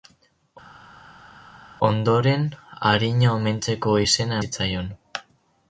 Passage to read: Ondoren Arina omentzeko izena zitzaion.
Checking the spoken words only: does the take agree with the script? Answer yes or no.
yes